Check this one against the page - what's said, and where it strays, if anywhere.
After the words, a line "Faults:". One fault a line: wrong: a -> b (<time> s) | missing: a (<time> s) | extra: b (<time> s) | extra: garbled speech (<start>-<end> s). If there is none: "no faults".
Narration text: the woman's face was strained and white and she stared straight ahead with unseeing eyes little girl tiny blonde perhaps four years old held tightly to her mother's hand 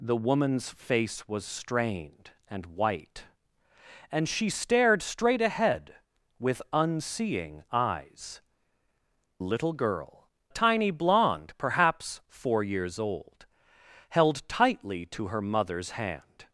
the woman's face was strained and white and she stared straight ahead with unseeing eyes little girl tiny blonde perhaps four years old held tightly to her mother's hand
Faults:
no faults